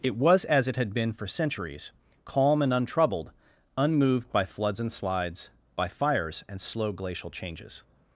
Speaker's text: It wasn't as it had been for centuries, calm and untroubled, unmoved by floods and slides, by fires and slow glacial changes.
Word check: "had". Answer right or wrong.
right